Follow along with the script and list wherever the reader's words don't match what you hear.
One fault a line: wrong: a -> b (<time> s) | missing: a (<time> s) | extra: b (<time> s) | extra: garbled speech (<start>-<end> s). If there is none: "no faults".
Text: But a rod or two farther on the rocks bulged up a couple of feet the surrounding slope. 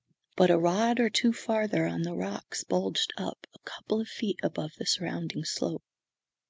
extra: above (4.4 s)